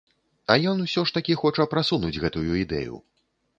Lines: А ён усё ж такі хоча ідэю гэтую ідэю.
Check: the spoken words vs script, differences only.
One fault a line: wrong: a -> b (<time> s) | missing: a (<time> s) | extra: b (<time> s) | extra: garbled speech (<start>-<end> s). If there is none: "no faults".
wrong: ідэю -> прасунуць (1.8 s)